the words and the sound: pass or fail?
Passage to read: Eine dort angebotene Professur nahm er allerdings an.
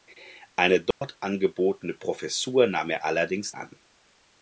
fail